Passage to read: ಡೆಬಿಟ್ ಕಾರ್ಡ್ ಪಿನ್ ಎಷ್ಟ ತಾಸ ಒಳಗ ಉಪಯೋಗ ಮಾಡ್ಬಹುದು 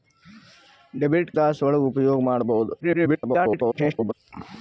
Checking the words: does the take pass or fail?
fail